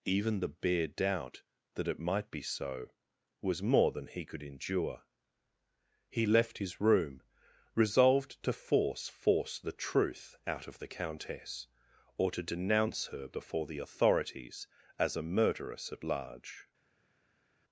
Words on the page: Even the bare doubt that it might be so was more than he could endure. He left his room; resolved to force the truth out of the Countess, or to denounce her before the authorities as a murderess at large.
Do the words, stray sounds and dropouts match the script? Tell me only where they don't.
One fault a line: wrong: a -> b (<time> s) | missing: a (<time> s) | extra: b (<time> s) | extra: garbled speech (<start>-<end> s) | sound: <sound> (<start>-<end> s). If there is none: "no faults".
extra: force (9.1 s)